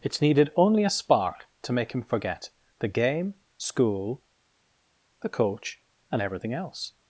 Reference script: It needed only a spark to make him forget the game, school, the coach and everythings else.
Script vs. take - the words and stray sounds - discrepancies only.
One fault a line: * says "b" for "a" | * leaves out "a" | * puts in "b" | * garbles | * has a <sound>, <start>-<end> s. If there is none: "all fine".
* says "everything" for "everythings"